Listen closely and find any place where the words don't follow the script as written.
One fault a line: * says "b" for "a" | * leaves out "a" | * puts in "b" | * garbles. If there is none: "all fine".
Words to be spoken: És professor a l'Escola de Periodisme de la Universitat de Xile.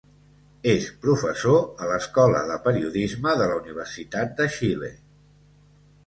all fine